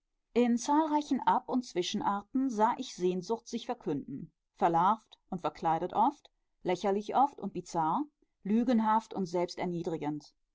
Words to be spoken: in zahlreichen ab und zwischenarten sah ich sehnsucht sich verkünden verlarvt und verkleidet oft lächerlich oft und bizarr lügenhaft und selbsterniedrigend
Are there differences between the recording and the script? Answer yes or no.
no